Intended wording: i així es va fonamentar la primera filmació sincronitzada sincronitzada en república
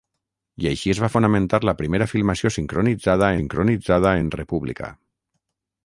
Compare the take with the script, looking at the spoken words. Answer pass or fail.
pass